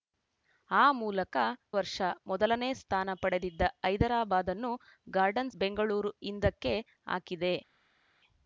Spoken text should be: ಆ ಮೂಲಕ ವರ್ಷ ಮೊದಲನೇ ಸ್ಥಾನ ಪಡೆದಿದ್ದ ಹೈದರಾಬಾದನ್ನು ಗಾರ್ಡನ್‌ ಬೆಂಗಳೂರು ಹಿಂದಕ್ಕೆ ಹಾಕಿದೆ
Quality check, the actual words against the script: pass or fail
pass